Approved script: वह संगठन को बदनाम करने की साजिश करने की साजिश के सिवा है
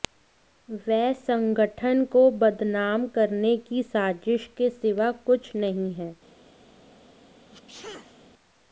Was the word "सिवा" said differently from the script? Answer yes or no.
yes